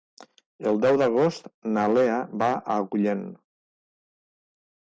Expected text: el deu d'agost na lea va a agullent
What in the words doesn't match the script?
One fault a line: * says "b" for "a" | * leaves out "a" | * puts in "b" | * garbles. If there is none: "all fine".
all fine